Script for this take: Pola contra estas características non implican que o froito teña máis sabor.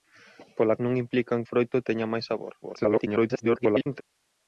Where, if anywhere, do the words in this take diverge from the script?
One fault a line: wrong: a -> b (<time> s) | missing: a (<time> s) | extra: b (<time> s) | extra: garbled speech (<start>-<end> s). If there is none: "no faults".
missing: contra estas características (0.8 s)
missing: que (1.4 s)
extra: garbled speech (2.6-4.0 s)